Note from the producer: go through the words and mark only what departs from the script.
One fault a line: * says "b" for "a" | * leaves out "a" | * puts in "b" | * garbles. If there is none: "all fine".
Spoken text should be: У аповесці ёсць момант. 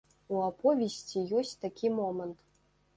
* puts in "такі"